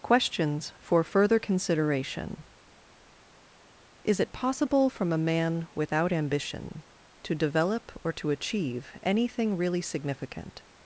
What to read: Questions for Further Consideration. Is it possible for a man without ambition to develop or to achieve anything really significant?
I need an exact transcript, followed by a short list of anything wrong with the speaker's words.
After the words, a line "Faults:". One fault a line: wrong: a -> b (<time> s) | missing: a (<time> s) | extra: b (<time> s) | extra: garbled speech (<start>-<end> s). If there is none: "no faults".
Questions for Further Consideration. Is it possible from a man without ambition to develop or to achieve anything really significant?
Faults:
wrong: for -> from (4.9 s)